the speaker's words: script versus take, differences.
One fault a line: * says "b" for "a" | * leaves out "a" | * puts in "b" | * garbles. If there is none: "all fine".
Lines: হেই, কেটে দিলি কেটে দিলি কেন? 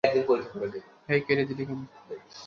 * leaves out "কেটে দিলি"